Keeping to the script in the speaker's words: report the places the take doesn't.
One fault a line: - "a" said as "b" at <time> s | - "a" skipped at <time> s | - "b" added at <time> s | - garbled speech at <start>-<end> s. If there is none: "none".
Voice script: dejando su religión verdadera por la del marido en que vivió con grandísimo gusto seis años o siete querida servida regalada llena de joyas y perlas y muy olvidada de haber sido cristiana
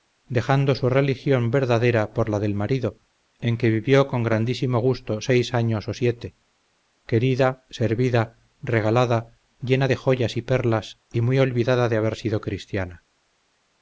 none